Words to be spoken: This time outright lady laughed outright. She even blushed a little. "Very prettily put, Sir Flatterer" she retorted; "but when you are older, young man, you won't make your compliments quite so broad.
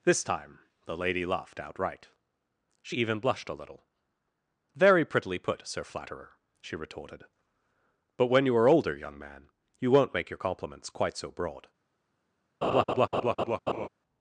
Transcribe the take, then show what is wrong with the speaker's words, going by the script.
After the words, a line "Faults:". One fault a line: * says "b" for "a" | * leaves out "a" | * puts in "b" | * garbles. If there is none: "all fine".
This time the lady laughed outright. She even blushed a little. "Very prettily put, Sir Flatterer" she retorted; "but when you are older, young man, you won't make your compliments quite so broad.
Faults:
* says "the" for "outright"